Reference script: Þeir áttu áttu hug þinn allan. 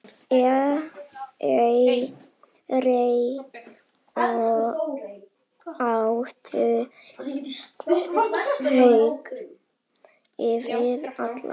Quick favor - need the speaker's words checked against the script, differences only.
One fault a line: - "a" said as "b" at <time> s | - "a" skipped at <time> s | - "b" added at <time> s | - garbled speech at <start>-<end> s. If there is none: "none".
- "áttu" skipped at 6.6 s